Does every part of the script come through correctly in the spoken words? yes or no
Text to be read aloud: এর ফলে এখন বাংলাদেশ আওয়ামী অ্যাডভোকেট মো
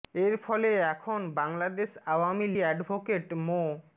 yes